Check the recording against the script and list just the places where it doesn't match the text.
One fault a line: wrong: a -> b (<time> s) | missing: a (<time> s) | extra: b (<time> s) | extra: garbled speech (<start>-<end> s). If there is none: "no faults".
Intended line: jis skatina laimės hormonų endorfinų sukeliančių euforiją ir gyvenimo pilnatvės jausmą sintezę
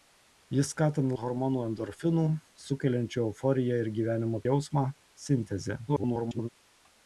missing: laimės (1.2 s)
missing: pilnatvės (4.4 s)
extra: garbled speech (5.9-6.5 s)